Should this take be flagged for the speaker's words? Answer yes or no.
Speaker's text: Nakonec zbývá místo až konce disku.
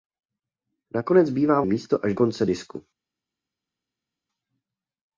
no